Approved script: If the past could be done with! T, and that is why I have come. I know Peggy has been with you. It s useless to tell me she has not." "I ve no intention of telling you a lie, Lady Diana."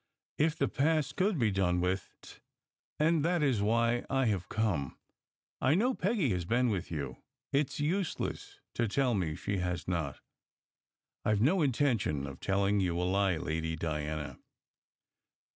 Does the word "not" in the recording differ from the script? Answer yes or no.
no